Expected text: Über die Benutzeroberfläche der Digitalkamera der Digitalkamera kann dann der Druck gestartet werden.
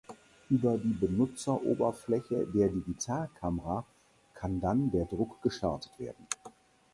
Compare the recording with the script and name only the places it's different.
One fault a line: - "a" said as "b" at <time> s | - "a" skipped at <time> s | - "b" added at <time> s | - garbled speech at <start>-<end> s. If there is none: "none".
- "der Digitalkamera" skipped at 3.9 s